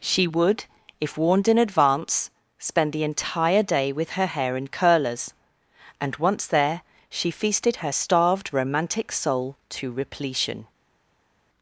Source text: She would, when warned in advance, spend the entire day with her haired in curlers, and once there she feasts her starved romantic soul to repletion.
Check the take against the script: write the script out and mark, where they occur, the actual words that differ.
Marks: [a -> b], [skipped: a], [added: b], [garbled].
She would, [when -> if] warned in advance, spend the entire day with her [haired -> hair] in curlers, and once there she [feasts -> feasted] her starved romantic soul to repletion.